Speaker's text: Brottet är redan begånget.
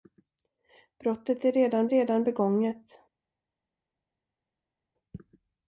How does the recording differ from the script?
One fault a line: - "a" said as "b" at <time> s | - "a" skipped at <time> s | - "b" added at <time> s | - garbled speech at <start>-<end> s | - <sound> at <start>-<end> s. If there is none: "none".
- "redan" added at 1.9 s